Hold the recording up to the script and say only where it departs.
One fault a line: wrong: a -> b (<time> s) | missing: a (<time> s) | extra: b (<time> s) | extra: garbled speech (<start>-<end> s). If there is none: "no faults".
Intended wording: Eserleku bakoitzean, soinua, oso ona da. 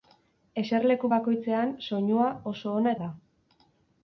no faults